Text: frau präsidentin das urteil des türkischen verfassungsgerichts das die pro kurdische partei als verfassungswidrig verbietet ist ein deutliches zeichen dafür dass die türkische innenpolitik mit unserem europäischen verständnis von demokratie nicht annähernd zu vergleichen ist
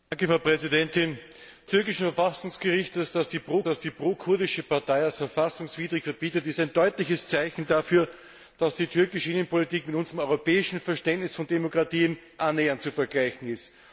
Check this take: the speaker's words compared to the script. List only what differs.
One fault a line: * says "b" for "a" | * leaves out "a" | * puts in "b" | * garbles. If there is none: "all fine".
* says "türkischen verfassungsgerichts das die pro" for "das urteil des türkischen verfassungsgerichts"
* leaves out "nicht"